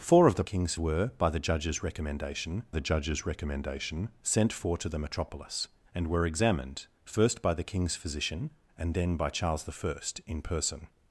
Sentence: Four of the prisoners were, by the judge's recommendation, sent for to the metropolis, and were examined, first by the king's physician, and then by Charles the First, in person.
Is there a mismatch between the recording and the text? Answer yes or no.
yes